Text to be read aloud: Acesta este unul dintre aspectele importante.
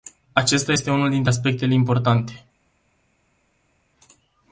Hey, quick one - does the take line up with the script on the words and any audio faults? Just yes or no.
yes